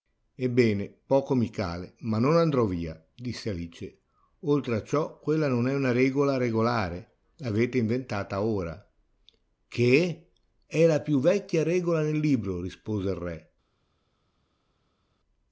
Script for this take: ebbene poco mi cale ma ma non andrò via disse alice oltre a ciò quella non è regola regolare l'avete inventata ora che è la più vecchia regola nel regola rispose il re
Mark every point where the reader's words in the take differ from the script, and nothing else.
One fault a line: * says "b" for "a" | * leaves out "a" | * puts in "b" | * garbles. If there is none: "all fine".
* leaves out "ma"
* puts in "una"
* says "libro" for "regola"